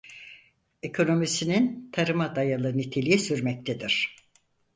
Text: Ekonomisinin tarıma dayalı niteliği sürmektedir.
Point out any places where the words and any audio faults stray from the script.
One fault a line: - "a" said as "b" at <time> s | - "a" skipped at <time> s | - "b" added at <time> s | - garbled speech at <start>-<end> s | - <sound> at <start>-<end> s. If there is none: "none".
none